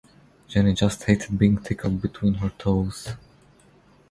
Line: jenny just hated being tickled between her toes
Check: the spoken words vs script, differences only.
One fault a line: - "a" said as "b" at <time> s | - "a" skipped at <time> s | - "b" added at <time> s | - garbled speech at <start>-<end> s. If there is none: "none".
none